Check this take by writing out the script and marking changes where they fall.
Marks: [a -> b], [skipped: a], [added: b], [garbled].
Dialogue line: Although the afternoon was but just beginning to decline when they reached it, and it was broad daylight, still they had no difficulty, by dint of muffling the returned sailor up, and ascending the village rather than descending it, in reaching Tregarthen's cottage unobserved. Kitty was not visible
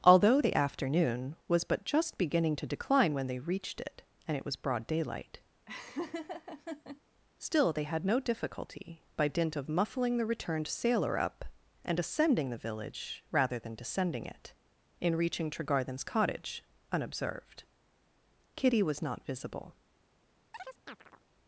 Although the afternoon was but just beginning to decline when they reached it, and it was broad daylight, still they had no difficulty, by dint of muffling the returned sailor up, and ascending the village rather than descending it, in reaching Tregarthen's cottage unobserved. Kitty was not visible